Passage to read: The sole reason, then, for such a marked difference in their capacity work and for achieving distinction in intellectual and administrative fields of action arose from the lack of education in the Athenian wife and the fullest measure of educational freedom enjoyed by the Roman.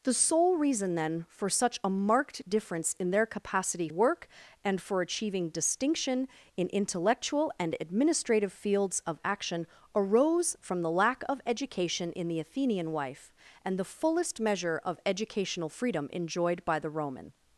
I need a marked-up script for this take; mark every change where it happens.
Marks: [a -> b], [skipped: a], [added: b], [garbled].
The sole reason, then, for such a marked difference in their capacity work and for achieving distinction in intellectual and administrative fields of action arose from the lack of education in the Athenian wife and the fullest measure of educational freedom enjoyed by the Roman.